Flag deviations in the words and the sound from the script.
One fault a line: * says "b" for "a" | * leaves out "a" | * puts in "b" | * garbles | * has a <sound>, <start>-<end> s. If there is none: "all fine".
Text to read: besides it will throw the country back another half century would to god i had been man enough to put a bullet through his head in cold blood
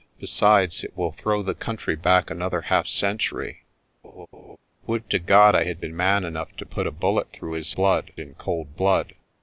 * has a laugh, 4.0-4.6 s
* says "blood" for "head"